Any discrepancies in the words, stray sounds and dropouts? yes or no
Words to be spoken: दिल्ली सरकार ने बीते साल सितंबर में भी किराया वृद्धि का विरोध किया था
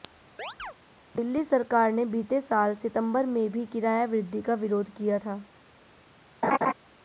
yes